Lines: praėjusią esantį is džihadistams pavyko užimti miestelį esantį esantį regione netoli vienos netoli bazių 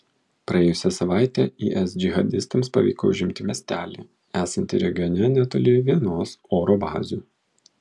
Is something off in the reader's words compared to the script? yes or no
yes